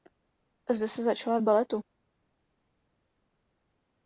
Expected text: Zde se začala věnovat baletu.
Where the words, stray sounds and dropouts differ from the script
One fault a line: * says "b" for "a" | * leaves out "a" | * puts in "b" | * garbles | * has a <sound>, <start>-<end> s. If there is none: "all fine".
* leaves out "věnovat"